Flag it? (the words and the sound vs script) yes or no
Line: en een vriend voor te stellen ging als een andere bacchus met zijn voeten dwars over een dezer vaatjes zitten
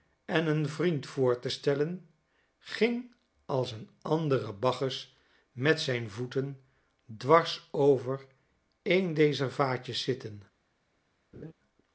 yes